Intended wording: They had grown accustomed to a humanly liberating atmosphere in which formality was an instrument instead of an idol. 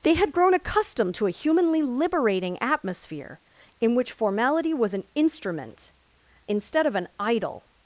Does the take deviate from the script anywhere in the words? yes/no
no